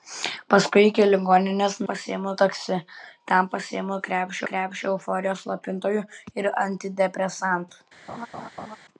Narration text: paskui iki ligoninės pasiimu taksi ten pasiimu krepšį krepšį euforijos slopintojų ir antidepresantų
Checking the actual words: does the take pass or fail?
pass